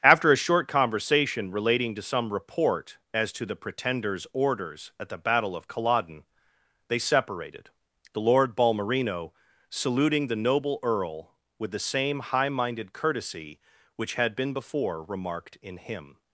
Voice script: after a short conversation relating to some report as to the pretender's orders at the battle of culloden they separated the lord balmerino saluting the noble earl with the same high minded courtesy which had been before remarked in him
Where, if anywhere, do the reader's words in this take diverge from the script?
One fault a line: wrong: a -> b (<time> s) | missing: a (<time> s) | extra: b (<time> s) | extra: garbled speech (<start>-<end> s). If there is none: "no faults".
no faults